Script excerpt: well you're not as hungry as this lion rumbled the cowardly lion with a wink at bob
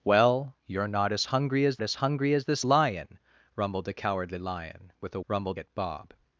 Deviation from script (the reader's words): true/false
true